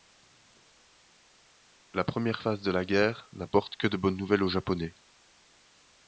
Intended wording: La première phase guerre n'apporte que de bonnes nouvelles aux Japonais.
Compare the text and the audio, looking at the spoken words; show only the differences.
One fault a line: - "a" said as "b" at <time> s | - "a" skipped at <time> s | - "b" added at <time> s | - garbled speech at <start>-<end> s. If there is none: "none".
- "de la" added at 2.6 s